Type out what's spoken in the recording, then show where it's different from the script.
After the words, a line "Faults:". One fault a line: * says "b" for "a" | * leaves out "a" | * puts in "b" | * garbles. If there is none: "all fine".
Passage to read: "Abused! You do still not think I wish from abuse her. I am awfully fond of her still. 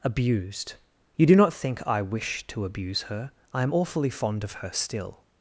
"Abused! You do not think I wish to abuse her. I am awfully fond of her still.
Faults:
* leaves out "still"
* says "to" for "from"